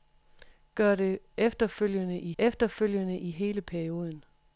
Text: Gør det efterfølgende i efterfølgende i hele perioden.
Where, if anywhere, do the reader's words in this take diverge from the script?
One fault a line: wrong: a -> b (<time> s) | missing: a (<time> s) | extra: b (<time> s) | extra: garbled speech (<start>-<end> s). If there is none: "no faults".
no faults